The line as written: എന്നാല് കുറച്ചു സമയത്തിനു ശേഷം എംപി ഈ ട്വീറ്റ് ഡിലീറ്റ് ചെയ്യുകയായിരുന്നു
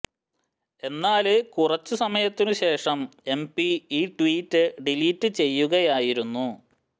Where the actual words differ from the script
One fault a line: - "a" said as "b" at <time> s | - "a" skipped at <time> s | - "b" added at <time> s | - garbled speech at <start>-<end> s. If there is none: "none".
none